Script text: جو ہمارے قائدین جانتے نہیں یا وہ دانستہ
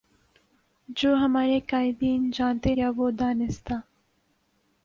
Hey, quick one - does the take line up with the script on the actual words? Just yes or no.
no